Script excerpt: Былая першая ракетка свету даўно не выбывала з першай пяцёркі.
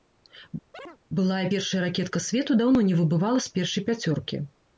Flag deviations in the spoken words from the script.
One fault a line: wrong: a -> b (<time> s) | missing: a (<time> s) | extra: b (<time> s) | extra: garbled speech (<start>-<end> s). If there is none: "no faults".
no faults